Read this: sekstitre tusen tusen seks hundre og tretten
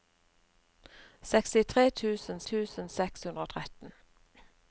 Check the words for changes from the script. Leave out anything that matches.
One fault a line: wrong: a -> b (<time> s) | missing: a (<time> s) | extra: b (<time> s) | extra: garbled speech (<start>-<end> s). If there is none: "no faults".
no faults